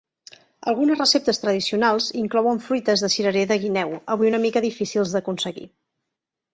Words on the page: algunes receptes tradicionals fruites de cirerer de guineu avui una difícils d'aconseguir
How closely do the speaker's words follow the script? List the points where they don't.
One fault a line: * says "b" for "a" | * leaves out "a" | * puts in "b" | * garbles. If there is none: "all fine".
* puts in "inclouen"
* puts in "mica"